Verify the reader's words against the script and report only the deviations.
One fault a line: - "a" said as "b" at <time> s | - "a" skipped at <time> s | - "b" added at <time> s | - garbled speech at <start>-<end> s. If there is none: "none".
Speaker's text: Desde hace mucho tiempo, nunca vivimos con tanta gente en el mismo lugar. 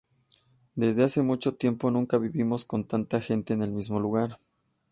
none